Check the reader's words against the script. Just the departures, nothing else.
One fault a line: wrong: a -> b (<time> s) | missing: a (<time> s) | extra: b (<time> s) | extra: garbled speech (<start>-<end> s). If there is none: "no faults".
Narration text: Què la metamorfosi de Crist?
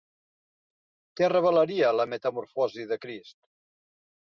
extra: revelaria (1.3 s)